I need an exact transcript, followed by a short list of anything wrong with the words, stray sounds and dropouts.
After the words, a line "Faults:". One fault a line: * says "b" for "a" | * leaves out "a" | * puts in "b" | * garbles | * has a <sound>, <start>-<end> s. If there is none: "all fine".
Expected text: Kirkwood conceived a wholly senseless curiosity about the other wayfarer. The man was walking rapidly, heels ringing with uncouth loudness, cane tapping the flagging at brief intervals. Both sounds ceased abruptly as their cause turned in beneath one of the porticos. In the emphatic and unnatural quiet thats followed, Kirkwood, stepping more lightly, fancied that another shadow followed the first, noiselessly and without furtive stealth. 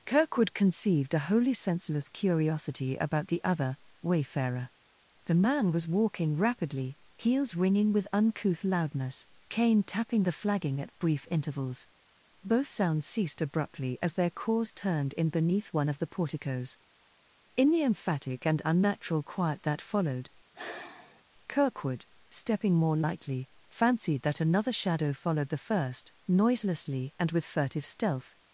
Kirkwood conceived a wholly senseless curiosity about the other wayfarer. The man was walking rapidly, heels ringing with uncouth loudness, cane tapping the flagging at brief intervals. Both sounds ceased abruptly as their cause turned in beneath one of the porticos. In the emphatic and unnatural quiet that followed, Kirkwood, stepping more lightly, fancied that another shadow followed the first, noiselessly and with furtive stealth.
Faults:
* says "that" for "thats"
* has a sigh, 20.5-21.2 s
* says "with" for "without"